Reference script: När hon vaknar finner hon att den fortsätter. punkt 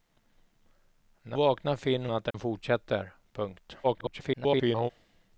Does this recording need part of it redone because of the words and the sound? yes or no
yes